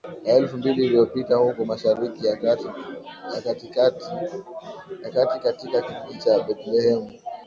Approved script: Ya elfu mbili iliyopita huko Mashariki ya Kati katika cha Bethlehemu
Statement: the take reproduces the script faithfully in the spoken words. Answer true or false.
false